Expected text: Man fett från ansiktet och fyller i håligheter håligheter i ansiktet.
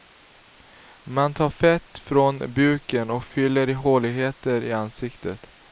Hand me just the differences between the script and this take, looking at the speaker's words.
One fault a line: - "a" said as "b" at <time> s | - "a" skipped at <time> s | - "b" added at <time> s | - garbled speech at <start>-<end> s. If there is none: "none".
- "tar" added at 1.3 s
- "ansiktet" said as "buken" at 2.5 s
- "håligheter" skipped at 4.6 s